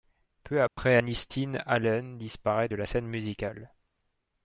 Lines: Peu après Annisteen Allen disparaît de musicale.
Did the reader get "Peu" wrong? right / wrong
right